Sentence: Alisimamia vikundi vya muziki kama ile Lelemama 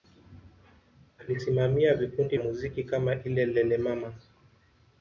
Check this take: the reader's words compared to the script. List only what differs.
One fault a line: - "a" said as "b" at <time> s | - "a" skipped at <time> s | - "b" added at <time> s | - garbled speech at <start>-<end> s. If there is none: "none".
- "vya" skipped at 2.4 s